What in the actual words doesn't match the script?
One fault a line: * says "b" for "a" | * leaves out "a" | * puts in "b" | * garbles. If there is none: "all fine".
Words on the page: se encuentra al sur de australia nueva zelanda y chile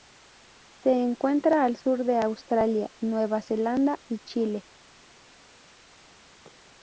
all fine